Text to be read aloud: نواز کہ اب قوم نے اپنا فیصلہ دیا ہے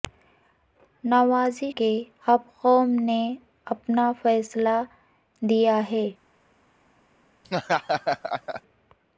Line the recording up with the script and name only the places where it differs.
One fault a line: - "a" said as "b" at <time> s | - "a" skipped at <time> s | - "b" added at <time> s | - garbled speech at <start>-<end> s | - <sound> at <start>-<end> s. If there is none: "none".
- laugh at 7.4-8.6 s